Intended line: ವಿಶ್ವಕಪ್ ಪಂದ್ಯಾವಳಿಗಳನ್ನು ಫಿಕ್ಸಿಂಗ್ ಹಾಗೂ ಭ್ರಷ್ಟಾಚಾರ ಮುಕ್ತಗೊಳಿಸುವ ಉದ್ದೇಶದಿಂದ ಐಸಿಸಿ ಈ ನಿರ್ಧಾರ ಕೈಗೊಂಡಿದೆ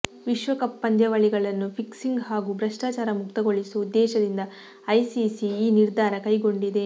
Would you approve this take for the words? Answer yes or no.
yes